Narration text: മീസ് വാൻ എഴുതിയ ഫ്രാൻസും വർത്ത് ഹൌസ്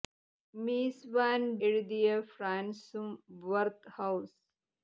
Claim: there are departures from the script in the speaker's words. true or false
false